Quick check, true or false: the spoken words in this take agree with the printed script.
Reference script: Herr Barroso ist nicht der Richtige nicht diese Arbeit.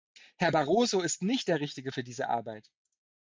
false